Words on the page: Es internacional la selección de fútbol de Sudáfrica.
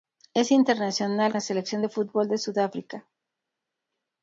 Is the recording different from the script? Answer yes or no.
no